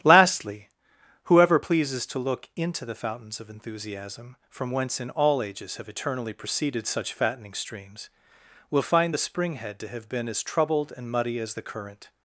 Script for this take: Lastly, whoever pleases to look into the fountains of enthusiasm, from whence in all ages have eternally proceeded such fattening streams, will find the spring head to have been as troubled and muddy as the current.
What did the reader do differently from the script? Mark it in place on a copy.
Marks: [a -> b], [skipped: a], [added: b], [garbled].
Lastly, whoever pleases to look into the fountains of enthusiasm, from whence in all ages have eternally proceeded such fattening streams, will find the spring head to have been as troubled and muddy as the current.